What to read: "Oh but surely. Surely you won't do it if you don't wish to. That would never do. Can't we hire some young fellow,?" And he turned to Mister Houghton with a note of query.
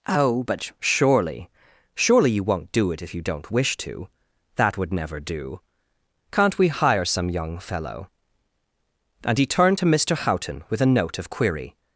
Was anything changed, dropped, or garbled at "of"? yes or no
no